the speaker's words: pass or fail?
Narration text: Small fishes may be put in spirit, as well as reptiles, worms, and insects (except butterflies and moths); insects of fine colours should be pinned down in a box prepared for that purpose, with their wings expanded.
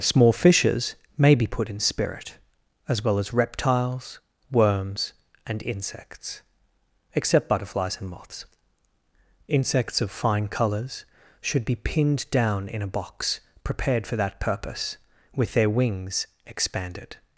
pass